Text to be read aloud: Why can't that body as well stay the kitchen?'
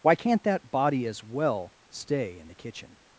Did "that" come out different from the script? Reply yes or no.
no